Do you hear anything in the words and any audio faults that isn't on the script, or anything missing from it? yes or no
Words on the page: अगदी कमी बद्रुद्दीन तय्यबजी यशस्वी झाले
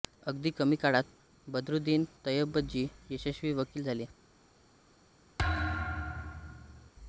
yes